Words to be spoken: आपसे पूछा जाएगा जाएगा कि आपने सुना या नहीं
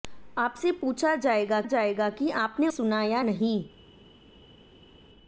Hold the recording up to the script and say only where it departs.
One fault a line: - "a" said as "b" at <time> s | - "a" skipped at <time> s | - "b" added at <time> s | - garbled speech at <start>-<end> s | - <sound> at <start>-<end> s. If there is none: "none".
none